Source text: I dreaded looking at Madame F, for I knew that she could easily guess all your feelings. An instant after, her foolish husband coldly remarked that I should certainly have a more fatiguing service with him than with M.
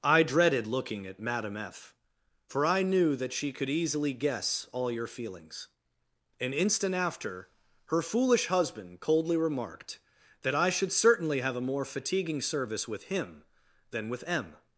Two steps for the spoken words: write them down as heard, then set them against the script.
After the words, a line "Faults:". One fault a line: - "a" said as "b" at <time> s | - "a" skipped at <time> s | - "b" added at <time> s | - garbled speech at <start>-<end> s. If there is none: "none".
I dreaded looking at Madame F, for I knew that she could easily guess all your feelings. An instant after, her foolish husband coldly remarked that I should certainly have a more fatiguing service with him than with M.
Faults:
none